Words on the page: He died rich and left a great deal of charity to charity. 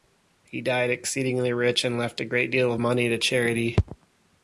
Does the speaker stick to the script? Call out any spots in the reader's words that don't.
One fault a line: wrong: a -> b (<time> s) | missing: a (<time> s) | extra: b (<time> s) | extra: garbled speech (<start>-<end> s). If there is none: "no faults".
extra: exceedingly (0.9 s)
wrong: charity -> money (2.8 s)